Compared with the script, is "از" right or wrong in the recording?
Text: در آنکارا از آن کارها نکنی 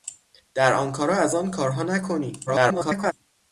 right